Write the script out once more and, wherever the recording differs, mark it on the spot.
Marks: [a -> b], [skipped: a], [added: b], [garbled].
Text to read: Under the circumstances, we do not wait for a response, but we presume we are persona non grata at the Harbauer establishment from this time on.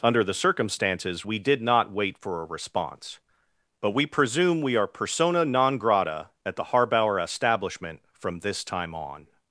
Under the circumstances, we [do -> did] not wait for a response, but we presume we are persona non grata at the Harbauer establishment from this time on.